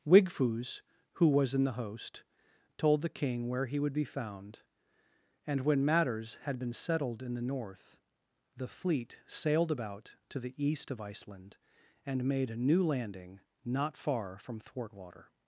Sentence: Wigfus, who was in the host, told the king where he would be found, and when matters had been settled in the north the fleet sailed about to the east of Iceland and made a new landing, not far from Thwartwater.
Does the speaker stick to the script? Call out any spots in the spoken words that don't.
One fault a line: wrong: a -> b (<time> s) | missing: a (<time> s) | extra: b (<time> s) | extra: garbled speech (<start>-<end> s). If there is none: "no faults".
no faults